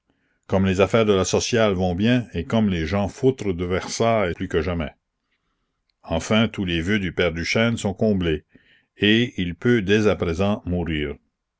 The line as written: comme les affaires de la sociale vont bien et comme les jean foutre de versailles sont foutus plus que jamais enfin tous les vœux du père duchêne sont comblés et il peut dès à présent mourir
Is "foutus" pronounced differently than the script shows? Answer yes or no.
yes